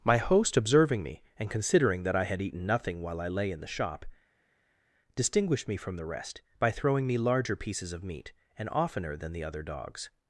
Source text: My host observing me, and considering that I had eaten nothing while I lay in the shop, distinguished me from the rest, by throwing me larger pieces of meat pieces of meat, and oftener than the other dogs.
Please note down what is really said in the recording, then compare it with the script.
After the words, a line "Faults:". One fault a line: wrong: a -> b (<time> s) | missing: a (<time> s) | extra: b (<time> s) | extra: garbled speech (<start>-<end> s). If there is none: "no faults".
My host observing me, and considering that I had eaten nothing while I lay in the shop, distinguished me from the rest, by throwing me larger pieces of meat, and oftener than the other dogs.
Faults:
missing: pieces of meat (8.3 s)